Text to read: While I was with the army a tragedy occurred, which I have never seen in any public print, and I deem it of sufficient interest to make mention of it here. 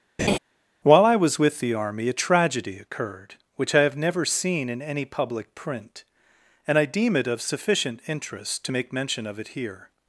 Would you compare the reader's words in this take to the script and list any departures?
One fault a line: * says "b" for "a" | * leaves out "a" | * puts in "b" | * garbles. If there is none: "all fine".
all fine